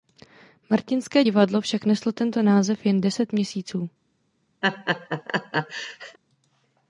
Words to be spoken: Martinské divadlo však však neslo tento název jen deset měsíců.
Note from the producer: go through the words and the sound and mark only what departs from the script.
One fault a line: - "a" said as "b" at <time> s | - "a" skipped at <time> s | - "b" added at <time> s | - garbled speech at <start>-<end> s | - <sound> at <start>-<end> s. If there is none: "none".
- "však" skipped at 1.8 s
- laugh at 4.6-6.2 s